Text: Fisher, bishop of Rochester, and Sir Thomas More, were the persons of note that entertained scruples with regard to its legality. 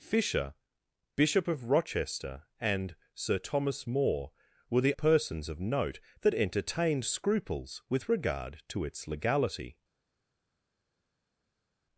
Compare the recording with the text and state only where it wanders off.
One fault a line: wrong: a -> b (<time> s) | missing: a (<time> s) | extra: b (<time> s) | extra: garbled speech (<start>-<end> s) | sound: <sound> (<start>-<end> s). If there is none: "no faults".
no faults